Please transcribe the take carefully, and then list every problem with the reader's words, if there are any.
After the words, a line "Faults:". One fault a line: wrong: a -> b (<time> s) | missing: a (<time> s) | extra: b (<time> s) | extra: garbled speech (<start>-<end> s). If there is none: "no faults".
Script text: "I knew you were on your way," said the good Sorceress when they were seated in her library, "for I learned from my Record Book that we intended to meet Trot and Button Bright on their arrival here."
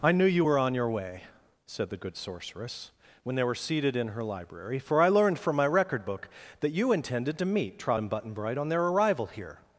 "I knew you were on your way," said the good Sorceress when they were seated in her library, "for I learned from my Record Book that you intended to meet Trot and Button Bright on their arrival here."
Faults:
wrong: we -> you (6.7 s)